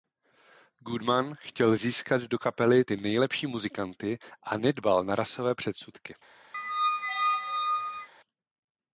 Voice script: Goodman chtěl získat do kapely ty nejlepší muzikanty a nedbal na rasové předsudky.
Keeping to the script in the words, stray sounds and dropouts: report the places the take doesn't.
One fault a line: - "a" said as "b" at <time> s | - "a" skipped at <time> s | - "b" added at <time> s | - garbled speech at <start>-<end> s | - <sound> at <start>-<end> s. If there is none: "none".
- squeak at 6.5-8.1 s